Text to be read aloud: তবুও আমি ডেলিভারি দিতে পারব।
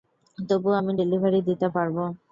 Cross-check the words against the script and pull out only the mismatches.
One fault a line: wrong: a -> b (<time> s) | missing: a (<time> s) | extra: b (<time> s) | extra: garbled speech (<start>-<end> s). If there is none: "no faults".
no faults